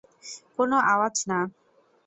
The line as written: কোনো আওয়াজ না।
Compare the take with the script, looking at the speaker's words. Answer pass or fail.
pass